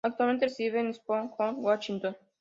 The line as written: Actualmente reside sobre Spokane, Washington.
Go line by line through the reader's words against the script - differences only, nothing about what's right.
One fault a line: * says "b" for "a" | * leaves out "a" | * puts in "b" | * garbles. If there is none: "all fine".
* says "en" for "sobre"